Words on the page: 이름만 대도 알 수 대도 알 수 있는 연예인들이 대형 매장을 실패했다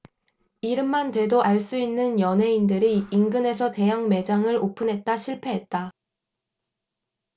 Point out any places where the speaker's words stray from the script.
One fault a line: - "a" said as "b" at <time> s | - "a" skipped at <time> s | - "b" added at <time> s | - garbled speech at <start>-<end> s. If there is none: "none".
- "대도 알 수" skipped at 1.8 s
- "인근에서" added at 3.1 s
- "오픈했다" added at 4.6 s